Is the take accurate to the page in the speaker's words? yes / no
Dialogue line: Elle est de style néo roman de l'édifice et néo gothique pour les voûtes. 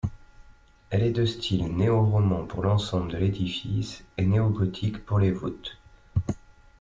no